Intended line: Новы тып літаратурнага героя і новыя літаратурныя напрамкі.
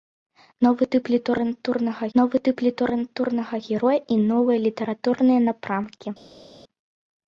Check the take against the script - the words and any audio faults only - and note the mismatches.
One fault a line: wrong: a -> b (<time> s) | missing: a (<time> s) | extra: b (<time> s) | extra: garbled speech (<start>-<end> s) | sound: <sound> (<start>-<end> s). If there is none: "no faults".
extra: новы тып літаратурнага (2.2 s)